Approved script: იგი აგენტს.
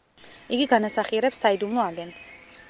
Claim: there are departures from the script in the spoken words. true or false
true